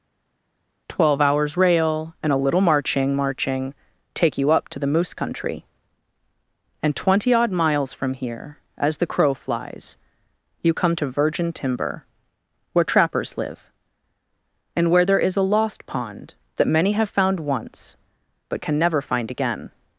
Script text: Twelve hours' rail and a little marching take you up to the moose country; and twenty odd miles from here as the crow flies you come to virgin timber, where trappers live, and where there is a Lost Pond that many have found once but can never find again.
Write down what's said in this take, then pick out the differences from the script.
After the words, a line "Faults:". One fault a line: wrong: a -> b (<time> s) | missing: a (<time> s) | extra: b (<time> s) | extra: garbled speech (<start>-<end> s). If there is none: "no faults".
Twelve hours' rail and a little marching marching take you up to the moose country; and twenty odd miles from here as the crow flies you come to virgin timber, where trappers live, and where there is a Lost Pond that many have found once but can never find again.
Faults:
extra: marching (3.1 s)